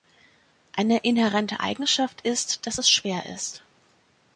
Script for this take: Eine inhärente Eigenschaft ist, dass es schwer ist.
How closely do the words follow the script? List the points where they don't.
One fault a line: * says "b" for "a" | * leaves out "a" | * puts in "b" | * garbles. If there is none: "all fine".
all fine